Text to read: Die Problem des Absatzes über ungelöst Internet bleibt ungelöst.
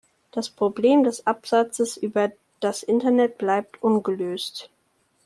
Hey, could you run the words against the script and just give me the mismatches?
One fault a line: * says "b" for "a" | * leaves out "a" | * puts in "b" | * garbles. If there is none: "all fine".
* says "Das" for "Die"
* says "das" for "ungelöst"